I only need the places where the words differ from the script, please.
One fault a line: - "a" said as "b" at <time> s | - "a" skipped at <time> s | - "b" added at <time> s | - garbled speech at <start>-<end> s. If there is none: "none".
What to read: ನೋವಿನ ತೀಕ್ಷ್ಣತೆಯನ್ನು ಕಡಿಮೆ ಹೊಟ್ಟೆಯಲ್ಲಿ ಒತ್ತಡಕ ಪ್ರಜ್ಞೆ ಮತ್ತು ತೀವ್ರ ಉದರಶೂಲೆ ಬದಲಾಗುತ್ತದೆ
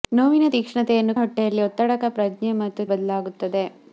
- "ಕಡಿಮೆ" skipped at 1.1 s
- "ತೀವ್ರ ಉದರಶೂಲೆ" skipped at 2.8 s